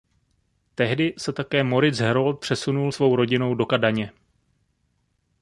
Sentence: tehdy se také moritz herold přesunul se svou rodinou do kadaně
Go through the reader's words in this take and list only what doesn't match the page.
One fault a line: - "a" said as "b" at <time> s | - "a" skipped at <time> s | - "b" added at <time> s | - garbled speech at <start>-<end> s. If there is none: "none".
- "se" skipped at 2.9 s